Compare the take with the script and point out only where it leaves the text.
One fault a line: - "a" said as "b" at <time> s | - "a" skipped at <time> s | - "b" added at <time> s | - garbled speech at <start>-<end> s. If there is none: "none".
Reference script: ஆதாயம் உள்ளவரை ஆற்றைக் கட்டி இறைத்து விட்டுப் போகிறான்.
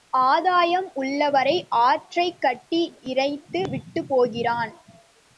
none